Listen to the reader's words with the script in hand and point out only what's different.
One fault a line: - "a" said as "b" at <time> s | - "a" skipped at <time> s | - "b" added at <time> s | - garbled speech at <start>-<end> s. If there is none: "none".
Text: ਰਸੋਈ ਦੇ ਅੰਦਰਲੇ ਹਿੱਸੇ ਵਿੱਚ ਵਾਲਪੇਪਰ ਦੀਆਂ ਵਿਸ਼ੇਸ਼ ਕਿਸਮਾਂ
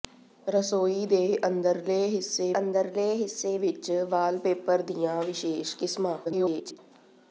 - "ਅੰਦਰਲੇ ਹਿੱਸੇ" added at 2.6 s
- garbled speech at 6.2-6.8 s